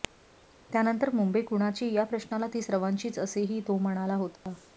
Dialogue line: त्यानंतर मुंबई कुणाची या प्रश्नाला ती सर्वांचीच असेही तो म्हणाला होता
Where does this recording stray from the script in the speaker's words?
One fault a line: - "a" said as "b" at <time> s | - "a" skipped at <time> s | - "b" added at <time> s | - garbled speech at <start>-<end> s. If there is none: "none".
none